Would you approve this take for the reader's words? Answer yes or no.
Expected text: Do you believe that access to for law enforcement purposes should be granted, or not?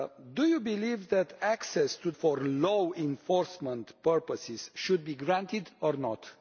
yes